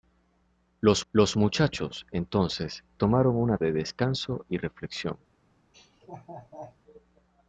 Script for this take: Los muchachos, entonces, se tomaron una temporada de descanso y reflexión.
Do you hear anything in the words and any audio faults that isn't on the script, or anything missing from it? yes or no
yes